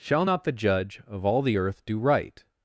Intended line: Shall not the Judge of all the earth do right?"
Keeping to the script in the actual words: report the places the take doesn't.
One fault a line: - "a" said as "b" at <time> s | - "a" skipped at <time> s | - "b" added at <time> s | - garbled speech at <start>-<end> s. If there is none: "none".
none